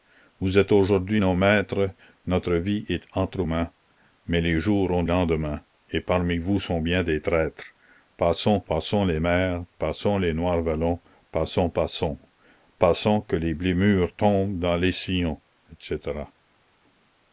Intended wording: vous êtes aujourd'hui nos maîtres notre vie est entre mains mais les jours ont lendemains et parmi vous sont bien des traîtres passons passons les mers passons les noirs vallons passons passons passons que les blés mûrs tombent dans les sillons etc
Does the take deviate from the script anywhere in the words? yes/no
no